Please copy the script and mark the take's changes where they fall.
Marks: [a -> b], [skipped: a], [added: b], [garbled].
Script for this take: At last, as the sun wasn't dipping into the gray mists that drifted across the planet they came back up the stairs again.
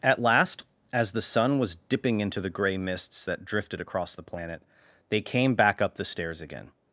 At last, as the sun [wasn't -> was] dipping into the gray mists that drifted across the planet they came back up the stairs again.